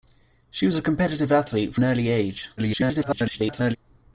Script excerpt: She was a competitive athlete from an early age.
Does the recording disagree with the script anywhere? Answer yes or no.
yes